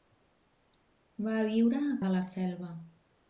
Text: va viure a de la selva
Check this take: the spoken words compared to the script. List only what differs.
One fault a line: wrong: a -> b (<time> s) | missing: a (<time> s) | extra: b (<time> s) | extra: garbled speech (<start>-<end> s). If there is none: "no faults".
no faults